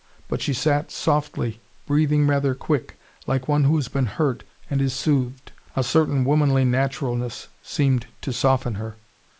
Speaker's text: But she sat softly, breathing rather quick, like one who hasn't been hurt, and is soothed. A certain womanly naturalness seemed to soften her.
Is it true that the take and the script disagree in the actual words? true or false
true